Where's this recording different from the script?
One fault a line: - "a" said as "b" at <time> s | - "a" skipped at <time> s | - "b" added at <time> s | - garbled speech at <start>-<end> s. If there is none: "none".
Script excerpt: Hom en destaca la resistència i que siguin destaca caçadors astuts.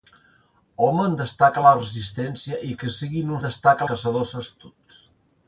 none